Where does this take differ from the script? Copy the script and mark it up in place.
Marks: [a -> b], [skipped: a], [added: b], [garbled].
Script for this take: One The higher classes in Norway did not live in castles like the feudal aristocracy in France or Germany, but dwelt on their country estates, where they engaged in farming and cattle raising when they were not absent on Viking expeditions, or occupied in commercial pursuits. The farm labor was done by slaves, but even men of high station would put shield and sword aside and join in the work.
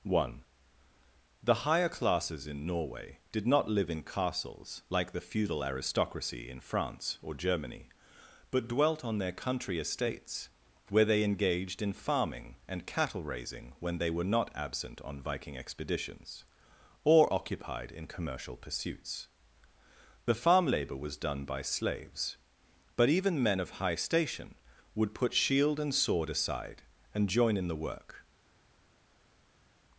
One The higher classes in Norway did not live in castles like the feudal aristocracy in France or Germany, but dwelt on their country estates, where they engaged in farming and cattle raising when they were not absent on Viking expeditions, or occupied in commercial pursuits. The farm labor was done by slaves, but even men of high station would put shield and sword aside and join in the work.